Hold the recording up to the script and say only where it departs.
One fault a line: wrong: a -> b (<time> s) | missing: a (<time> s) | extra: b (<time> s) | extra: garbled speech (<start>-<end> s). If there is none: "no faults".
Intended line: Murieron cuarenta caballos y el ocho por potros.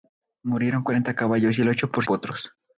no faults